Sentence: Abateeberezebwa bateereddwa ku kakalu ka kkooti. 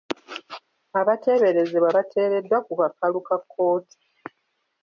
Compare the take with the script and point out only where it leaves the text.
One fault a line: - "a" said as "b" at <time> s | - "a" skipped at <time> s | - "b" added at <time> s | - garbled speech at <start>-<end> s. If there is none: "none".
none